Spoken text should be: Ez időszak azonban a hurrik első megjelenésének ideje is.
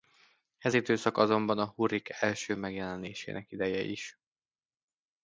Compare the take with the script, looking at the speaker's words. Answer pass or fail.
pass